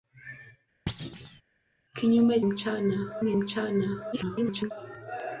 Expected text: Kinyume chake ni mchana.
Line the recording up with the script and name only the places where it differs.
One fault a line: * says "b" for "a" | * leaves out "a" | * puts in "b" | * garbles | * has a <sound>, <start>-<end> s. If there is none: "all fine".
* has a thud, 0.9-1.4 s
* says "mchana" for "chake"
* garbles